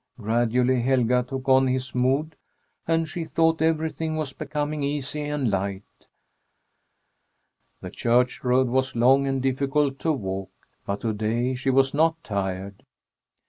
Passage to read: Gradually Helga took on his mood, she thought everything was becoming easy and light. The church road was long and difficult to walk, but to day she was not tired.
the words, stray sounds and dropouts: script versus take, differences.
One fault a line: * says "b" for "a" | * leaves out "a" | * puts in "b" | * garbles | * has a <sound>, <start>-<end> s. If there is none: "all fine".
* puts in "and"